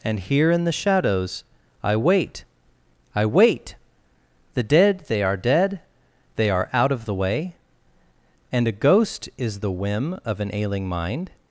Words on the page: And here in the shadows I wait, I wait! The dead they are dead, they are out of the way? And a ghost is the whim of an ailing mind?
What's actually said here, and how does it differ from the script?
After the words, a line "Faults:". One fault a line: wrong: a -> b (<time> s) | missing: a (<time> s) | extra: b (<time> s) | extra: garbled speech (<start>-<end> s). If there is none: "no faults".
And here in the shadows I wait, I wait! The dead they are dead, they are out of the way? And a ghost is the whim of an ailing mind?
Faults:
no faults